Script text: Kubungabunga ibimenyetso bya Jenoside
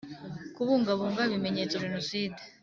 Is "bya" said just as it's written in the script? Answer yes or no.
no